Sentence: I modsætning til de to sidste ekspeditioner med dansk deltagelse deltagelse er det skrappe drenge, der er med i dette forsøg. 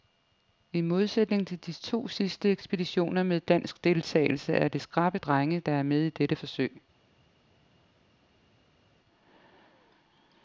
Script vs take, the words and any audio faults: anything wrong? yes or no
yes